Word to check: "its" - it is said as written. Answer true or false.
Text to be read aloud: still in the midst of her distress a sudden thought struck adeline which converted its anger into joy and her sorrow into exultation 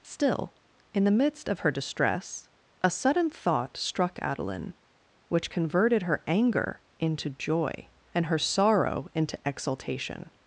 false